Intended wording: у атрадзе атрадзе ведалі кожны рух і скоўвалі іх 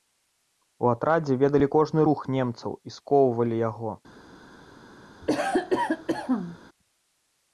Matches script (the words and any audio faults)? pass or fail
fail